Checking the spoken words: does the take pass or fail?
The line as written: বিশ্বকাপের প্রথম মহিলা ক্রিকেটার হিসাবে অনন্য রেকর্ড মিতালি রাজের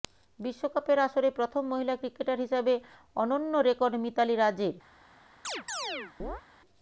fail